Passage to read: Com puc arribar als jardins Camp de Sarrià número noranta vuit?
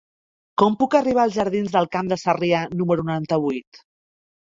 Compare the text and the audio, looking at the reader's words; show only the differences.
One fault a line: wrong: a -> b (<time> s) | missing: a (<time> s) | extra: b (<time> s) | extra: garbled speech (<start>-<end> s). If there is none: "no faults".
extra: del (1.8 s)